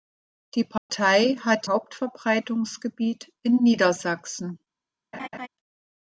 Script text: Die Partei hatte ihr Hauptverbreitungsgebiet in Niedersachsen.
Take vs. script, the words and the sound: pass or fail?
fail